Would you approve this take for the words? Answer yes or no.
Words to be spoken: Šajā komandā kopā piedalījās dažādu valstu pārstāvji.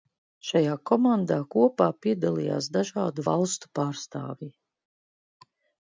yes